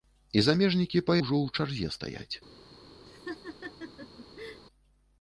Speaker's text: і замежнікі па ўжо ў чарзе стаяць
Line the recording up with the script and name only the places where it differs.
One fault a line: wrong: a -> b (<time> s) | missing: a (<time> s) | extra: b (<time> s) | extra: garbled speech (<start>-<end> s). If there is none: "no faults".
no faults